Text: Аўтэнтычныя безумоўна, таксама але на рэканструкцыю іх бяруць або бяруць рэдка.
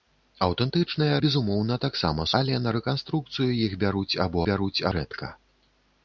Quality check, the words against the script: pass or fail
pass